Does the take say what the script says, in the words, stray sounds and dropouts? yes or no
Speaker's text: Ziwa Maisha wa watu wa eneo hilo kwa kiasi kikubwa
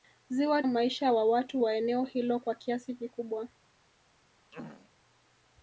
no